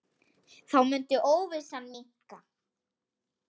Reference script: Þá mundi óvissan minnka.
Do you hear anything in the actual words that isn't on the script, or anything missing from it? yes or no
no